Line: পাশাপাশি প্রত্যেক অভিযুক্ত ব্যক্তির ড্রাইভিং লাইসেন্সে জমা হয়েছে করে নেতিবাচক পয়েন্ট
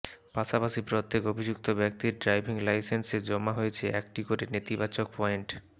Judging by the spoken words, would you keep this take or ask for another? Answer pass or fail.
fail